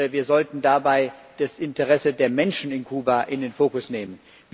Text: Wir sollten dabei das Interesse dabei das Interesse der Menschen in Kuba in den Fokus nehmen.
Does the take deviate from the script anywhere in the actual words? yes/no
yes